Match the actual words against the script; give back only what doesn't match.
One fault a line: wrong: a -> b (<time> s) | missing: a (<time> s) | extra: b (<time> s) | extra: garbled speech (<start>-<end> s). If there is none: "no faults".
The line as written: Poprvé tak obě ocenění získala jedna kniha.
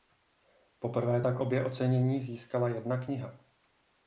no faults